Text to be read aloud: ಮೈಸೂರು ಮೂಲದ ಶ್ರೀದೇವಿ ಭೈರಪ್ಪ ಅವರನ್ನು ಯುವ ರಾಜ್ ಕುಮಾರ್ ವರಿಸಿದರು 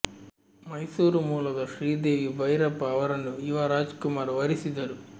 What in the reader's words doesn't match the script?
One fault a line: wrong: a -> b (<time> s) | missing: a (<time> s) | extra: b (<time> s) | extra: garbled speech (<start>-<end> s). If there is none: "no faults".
no faults